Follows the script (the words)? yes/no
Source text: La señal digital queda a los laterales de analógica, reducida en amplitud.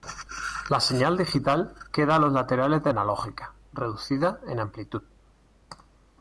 yes